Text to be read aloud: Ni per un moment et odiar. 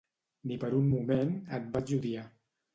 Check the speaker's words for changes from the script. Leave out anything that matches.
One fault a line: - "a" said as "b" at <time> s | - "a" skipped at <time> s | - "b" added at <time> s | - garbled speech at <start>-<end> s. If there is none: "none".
- "vaig" added at 1.8 s